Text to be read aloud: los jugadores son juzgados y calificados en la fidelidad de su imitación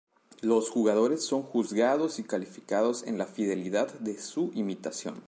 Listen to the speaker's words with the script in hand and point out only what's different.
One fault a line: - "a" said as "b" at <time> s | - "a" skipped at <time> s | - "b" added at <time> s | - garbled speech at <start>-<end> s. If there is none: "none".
none